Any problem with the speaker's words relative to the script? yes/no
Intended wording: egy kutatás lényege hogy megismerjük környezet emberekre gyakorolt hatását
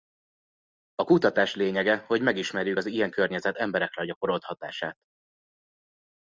yes